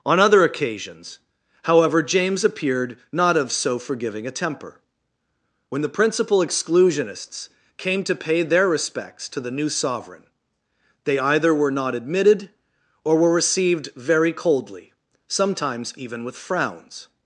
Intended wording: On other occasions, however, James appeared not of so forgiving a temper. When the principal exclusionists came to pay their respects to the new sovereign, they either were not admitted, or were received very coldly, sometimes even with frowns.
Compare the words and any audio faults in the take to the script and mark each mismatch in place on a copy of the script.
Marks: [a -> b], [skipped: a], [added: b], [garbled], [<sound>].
On other occasions, however, James appeared not of so forgiving a temper. When the principal exclusionists came to pay their respects to the new sovereign, they either were not admitted, or were received very coldly, sometimes even with frowns.